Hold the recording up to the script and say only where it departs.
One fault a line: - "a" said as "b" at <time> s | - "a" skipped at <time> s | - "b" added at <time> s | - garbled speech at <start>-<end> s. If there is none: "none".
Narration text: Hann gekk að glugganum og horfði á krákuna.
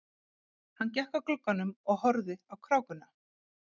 none